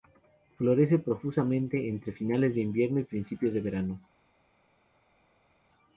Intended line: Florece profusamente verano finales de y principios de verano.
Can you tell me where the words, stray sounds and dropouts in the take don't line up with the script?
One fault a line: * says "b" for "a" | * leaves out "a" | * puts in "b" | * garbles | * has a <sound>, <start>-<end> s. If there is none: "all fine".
* says "entre" for "verano"
* puts in "invierno"